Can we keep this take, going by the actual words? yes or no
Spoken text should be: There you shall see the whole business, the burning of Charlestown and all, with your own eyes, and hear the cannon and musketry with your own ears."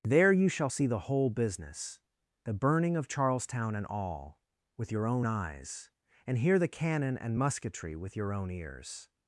yes